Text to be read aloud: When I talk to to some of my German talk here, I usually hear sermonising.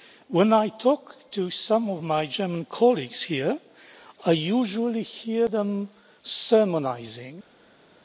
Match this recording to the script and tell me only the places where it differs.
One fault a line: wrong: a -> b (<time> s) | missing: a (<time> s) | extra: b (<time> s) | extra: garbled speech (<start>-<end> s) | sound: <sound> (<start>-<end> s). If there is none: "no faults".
missing: to (1.5 s)
wrong: talk -> colleagues (2.7 s)
extra: them (5.5 s)